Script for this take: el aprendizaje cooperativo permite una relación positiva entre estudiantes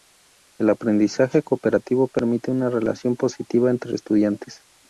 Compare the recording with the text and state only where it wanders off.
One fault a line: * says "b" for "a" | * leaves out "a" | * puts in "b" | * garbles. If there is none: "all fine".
all fine